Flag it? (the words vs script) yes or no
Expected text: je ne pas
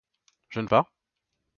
no